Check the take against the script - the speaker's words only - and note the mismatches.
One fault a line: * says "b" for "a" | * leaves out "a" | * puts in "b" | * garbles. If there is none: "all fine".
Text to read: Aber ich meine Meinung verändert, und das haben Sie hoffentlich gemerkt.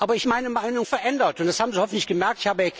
all fine